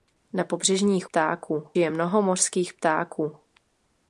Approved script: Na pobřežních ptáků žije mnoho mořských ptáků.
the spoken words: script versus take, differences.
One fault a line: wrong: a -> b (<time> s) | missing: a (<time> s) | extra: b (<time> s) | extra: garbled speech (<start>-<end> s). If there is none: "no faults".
no faults